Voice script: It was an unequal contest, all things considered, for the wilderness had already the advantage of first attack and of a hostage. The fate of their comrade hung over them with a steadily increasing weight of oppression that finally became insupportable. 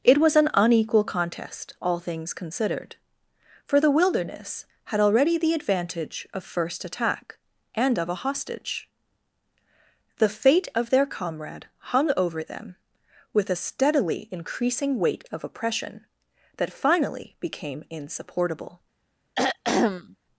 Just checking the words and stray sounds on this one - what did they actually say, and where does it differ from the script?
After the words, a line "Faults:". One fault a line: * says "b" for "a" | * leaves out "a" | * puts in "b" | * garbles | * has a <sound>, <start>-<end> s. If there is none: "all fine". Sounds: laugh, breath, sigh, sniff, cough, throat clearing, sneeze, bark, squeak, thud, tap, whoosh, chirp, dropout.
It was an unequal contest, all things considered, for the wilderness had already the advantage of first attack and of a hostage. The fate of their comrade hung over them with a steadily increasing weight of oppression that finally became insupportable.
Faults:
* has a throat clearing, 19.3-20.2 s